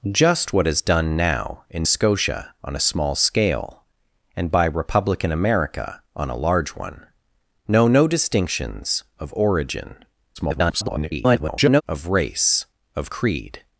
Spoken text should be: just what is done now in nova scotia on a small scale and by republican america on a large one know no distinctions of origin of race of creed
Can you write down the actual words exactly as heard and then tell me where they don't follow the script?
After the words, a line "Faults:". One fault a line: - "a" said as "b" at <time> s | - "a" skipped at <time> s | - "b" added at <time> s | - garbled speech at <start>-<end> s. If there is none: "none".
just what is done now in scotia on a small scale and by republican america on a large one know no distinctions of origin [garbled] of race of creed
Faults:
- "nova" skipped at 1.9 s
- garbled speech at 10.4-11.8 s